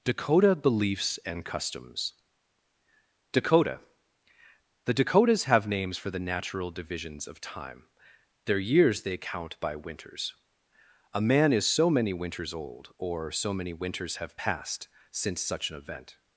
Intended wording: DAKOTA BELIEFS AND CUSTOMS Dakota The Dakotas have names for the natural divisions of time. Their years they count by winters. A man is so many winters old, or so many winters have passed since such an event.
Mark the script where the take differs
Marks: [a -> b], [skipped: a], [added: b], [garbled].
DAKOTA BELIEFS AND CUSTOMS Dakota The Dakotas have names for the natural divisions of time. Their years they count by winters. A man is so many winters old, or so many winters have passed since such an event.